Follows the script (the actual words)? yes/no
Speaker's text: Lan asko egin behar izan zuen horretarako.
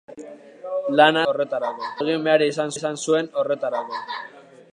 no